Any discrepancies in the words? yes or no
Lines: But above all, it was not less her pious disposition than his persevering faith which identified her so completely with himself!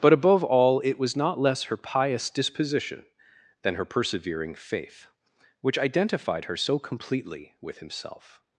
yes